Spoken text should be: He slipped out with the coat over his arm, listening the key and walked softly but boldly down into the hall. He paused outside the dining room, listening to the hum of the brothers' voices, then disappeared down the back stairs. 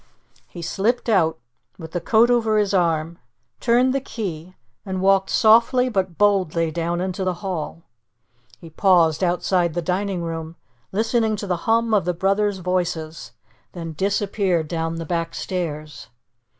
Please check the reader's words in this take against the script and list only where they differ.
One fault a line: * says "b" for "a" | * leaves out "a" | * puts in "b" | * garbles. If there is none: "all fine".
* says "turned" for "listening"